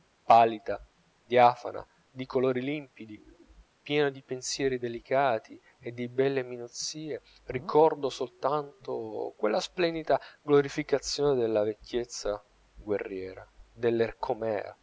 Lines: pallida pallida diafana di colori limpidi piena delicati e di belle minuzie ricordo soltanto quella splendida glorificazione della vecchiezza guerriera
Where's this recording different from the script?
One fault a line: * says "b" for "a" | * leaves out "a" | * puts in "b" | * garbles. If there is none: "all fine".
* leaves out "pallida"
* puts in "di pensieri"